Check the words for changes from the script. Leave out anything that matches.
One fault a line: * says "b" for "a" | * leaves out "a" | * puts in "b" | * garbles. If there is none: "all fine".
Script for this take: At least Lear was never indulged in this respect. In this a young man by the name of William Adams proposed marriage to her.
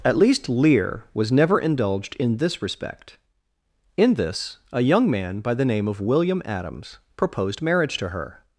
all fine